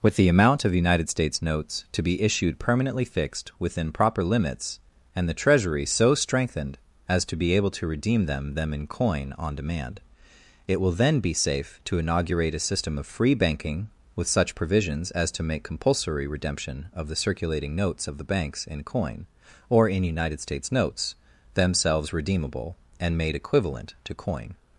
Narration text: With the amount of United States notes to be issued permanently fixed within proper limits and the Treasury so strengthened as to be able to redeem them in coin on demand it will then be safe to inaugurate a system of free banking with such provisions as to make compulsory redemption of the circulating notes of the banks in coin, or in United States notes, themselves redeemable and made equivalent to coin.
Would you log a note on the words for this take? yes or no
yes